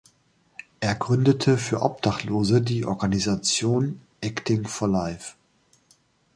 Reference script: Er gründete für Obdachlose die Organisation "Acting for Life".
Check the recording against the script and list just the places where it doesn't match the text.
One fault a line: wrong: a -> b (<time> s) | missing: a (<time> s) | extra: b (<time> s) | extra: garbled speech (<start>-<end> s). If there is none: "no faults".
no faults